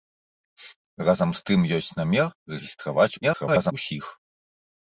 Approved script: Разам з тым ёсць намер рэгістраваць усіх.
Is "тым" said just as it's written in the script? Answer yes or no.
yes